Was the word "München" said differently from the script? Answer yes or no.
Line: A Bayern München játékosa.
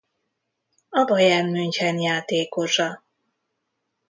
no